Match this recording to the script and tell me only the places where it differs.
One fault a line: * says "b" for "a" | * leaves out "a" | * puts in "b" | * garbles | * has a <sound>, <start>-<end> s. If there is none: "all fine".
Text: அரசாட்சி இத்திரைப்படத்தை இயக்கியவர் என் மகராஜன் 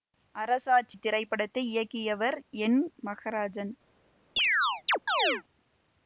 * has a chirp, 4.4-5.4 s